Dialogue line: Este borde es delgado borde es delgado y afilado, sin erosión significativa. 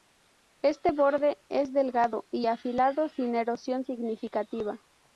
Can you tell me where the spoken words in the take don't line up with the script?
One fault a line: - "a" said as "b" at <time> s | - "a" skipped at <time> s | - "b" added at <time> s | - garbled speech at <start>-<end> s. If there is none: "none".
- "borde es delgado" skipped at 2.2 s